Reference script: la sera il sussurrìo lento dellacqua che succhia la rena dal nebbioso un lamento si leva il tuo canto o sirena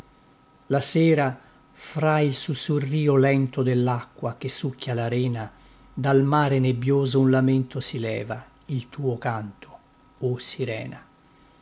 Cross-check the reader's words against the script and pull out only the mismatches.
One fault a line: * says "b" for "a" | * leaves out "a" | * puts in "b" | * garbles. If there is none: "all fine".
* puts in "fra"
* puts in "mare"